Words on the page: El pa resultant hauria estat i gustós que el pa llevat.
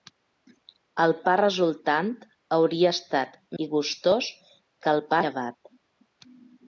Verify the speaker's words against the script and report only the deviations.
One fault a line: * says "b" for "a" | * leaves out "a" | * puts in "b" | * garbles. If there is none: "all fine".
all fine